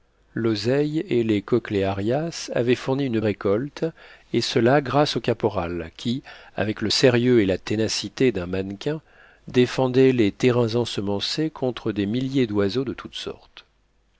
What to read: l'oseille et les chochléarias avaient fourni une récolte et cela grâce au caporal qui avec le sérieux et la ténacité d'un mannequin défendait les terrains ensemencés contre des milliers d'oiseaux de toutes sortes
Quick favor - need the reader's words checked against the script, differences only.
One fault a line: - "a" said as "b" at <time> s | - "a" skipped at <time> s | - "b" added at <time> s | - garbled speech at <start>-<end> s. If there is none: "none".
none